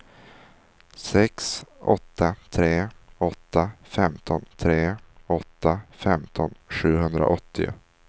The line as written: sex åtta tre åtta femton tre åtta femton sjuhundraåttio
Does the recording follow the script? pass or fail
pass